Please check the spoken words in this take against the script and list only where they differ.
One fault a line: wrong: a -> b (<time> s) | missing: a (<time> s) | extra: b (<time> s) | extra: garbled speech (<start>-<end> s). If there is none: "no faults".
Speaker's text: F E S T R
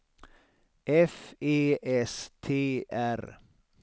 no faults